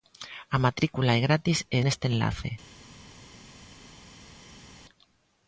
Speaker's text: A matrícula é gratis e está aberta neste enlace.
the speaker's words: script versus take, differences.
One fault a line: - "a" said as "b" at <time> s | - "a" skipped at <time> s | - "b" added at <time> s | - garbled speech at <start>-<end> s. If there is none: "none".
- "está aberta" skipped at 1.8 s